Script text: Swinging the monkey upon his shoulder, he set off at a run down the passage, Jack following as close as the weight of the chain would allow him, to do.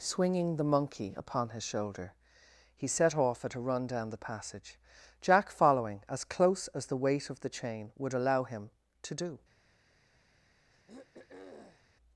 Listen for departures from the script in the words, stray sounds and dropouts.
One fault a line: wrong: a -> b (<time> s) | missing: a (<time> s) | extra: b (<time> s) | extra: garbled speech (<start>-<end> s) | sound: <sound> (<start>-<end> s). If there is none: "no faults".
sound: throat clearing (10.7-11.9 s)